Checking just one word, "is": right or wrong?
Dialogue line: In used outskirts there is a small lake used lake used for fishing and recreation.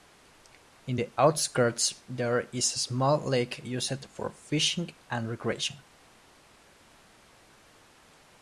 right